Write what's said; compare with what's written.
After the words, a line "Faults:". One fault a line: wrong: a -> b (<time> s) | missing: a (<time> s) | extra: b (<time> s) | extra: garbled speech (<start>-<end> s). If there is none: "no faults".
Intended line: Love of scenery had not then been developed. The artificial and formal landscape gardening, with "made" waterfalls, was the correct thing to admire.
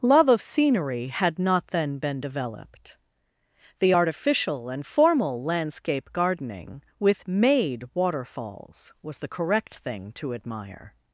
Love of scenery had not then been developed. The artificial and formal landscape gardening, with "made" waterfalls, was the correct thing to admire.
Faults:
no faults